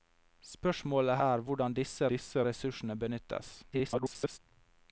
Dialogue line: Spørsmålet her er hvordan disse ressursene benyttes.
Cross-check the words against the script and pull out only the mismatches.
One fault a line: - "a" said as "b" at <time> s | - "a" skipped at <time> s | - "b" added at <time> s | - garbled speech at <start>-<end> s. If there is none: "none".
- "her" skipped at 1.2 s
- "disse" added at 2.1 s
- garbled speech at 3.7-4.4 s